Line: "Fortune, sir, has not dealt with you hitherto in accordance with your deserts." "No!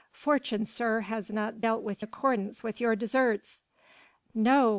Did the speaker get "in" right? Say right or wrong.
wrong